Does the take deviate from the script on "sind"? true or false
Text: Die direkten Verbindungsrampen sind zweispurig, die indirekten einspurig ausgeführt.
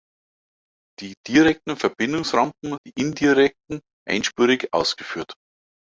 true